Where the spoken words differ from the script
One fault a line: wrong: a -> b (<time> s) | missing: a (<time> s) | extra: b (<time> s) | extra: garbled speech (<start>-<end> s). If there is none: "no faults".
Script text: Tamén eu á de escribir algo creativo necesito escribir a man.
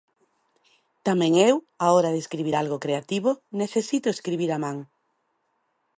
extra: hora (1.9 s)